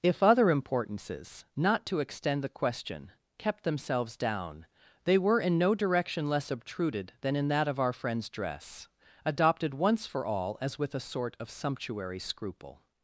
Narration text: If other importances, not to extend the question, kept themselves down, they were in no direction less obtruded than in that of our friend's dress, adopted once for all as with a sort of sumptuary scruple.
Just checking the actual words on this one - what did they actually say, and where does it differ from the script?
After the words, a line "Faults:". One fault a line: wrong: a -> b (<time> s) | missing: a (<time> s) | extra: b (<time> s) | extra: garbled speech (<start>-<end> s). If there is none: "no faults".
If other importances, not to extend the question, kept themselves down, they were in no direction less obtruded than in that of our friend's dress, adopted once for all as with a sort of sumptuary scruple.
Faults:
no faults